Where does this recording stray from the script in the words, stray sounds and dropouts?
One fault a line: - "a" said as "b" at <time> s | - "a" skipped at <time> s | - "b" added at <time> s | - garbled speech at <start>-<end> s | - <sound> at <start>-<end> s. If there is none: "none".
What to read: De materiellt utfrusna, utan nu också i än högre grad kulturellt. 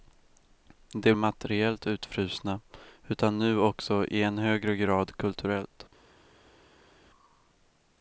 none